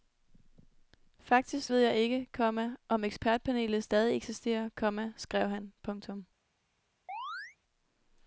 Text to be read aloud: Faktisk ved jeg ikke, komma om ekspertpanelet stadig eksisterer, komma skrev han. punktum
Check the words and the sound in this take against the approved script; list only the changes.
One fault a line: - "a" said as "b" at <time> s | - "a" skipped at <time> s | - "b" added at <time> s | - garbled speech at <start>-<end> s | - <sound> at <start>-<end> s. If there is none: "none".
- chirp at 7.1-7.6 s